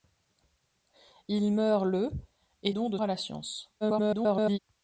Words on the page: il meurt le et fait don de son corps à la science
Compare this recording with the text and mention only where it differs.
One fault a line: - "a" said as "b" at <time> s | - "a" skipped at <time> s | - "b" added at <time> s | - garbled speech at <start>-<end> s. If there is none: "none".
- "fait" skipped at 2.7 s
- "son corps" skipped at 3.0 s
- garbled speech at 3.8-4.6 s